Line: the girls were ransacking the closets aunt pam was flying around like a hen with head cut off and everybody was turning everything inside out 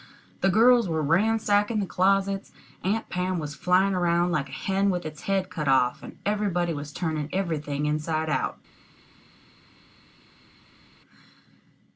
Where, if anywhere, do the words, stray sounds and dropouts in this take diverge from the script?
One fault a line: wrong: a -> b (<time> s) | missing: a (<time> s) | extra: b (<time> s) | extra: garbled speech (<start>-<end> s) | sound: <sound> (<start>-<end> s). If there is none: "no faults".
extra: its (5.0 s)